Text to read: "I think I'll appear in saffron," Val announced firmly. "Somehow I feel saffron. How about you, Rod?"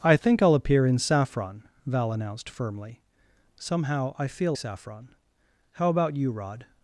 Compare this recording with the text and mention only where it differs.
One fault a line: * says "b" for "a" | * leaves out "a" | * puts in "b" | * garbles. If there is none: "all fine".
all fine